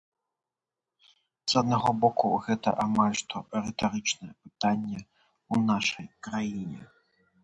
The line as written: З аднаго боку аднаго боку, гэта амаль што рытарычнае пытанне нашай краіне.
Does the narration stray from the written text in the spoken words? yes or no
yes